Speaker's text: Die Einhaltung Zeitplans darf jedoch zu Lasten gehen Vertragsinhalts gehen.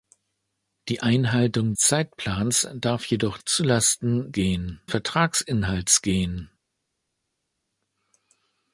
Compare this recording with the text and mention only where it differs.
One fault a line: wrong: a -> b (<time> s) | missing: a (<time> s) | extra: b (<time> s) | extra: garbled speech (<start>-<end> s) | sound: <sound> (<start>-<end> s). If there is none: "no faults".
no faults